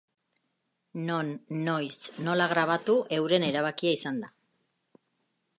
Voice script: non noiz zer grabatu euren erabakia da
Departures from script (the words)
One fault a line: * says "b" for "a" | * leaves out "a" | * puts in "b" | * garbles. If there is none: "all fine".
* says "nola" for "zer"
* puts in "izan"